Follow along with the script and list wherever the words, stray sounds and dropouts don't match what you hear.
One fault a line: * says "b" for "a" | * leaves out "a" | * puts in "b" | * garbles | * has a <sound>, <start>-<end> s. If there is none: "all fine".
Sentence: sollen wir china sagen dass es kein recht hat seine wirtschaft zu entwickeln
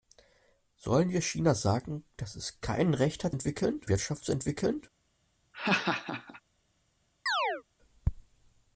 * says "entwickeln" for "seine"
* has a laugh, 5.5-6.4 s
* has a chirp, 7.3-7.6 s